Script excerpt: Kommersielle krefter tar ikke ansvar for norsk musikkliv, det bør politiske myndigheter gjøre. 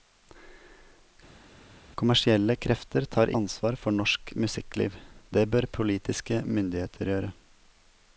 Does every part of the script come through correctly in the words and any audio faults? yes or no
no